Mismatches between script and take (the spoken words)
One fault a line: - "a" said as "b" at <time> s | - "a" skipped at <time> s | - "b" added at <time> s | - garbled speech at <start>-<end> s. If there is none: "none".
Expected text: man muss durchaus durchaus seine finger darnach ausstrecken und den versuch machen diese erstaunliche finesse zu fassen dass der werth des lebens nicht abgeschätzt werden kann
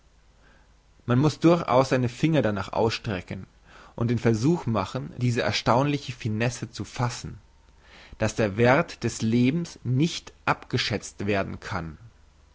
- "durchaus" skipped at 1.9 s